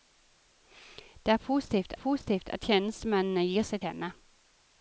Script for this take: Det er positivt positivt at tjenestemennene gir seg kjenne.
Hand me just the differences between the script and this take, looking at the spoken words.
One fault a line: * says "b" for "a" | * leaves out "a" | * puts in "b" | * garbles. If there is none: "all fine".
all fine